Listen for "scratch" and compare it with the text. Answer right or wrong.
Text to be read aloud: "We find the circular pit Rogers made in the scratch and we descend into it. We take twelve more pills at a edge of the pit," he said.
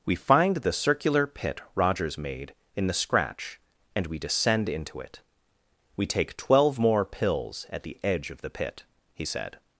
right